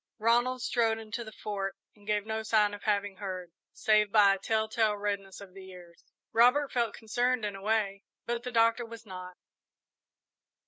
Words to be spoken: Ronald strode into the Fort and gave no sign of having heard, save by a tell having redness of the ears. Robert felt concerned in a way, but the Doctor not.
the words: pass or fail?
fail